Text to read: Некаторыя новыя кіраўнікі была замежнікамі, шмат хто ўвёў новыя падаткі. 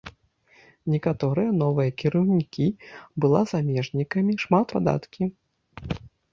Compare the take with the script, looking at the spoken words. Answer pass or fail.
fail